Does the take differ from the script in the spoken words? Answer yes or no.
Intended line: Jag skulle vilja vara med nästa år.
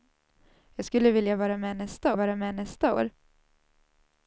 yes